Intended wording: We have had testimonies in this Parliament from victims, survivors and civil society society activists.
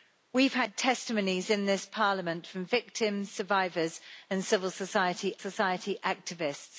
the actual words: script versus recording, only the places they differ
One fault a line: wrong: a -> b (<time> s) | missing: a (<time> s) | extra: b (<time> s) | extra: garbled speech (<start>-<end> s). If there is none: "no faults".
no faults